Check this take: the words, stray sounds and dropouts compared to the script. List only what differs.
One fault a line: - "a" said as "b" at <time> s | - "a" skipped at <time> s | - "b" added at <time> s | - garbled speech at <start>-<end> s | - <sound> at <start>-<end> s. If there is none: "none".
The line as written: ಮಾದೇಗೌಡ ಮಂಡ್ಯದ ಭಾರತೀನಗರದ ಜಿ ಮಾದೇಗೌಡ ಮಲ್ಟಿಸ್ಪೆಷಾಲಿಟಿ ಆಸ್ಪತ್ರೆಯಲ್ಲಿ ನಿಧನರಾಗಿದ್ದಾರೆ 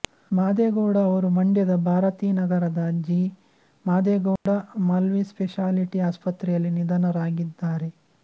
- "ಅವರು" added at 1.1 s
- dropout at 4.4-4.5 s